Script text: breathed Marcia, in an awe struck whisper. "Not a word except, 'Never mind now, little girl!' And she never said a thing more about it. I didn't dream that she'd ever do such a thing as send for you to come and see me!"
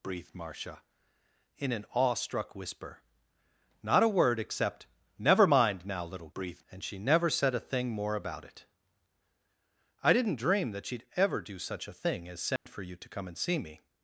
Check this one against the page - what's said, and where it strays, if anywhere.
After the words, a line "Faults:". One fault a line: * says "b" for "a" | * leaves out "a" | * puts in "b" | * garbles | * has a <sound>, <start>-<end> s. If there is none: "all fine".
breathed Marcia, in an awe struck whisper. "Not a word except, 'Never mind now, little breathed!' And she never said a thing more about it. I didn't dream that she'd ever do such a thing as send for you to come and see me!"
Faults:
* says "breathed" for "girl"
* has a dropout, 12.6-12.7 s